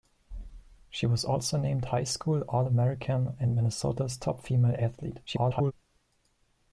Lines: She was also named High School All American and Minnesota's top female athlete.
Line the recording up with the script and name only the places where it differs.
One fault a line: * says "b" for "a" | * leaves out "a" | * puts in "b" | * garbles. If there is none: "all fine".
* garbles